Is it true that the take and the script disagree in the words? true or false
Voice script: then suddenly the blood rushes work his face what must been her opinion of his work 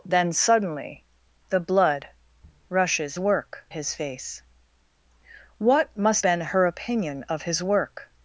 false